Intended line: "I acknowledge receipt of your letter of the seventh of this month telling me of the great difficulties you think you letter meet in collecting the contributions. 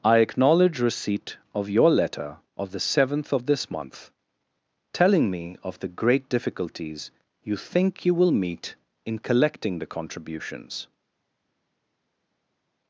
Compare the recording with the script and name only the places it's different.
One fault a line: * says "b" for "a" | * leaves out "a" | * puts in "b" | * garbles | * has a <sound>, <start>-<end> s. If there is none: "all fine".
* says "will" for "letter"